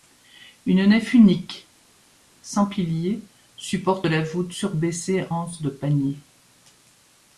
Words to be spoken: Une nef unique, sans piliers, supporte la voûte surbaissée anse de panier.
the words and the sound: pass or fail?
pass